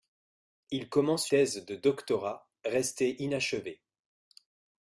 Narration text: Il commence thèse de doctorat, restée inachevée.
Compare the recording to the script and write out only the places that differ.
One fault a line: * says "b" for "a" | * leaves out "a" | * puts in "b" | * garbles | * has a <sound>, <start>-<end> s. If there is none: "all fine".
all fine